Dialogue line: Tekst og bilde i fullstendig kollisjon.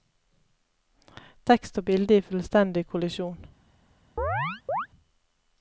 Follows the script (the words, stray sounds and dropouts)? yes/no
no